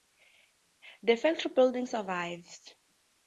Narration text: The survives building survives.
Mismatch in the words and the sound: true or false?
true